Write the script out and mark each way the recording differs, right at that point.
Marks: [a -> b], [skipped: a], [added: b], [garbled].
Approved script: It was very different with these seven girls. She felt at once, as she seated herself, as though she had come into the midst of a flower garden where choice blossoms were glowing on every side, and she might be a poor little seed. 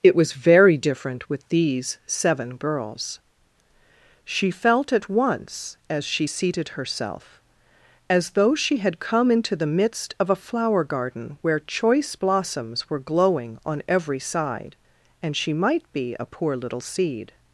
It was very different with these seven girls. She felt at once, as she seated herself, as though she had come into the midst of a flower garden where choice blossoms were glowing on every side, and she might be a poor little seed.